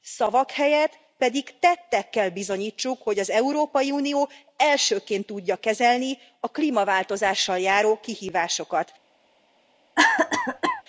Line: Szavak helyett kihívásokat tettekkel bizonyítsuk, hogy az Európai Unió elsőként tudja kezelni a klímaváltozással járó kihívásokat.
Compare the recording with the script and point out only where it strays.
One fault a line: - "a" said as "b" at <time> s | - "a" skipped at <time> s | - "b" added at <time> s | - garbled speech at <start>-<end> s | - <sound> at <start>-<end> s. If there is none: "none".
- "kihívásokat" said as "pedig" at 1.2 s
- cough at 10.0-10.8 s